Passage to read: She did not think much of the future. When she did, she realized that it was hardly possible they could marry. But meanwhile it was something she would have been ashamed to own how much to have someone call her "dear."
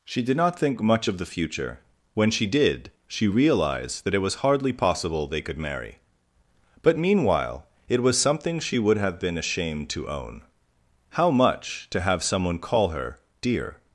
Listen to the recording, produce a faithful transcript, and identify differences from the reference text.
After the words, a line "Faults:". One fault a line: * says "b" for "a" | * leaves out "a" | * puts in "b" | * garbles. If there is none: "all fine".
She did not think much of the future. When she did, she realized that it was hardly possible they could marry. But meanwhile it was something she would have been ashamed to own how much to have someone call her "dear."
Faults:
all fine